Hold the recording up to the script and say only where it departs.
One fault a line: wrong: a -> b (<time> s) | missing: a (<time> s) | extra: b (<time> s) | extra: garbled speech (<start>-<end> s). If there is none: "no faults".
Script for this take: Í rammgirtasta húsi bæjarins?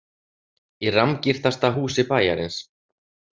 no faults